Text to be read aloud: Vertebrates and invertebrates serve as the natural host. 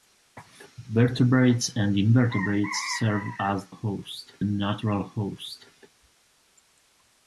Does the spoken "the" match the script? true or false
false